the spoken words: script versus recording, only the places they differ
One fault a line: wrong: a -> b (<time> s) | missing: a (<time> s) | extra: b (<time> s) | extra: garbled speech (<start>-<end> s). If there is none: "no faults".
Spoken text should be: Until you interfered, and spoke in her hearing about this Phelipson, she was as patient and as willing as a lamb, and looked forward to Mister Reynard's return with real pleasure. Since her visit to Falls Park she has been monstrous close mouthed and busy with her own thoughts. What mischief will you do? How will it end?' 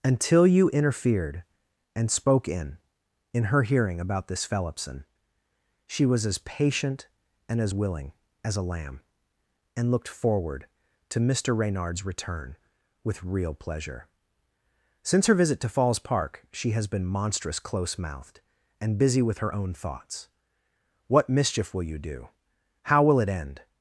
extra: in (3.3 s)